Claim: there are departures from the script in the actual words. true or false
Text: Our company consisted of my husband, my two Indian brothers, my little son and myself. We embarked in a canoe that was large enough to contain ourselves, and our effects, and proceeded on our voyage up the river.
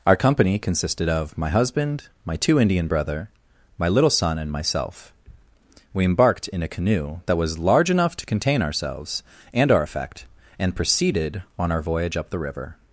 true